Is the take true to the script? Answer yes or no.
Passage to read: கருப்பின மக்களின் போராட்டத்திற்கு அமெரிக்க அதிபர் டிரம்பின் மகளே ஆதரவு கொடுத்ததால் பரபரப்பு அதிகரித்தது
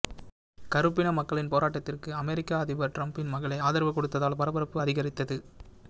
yes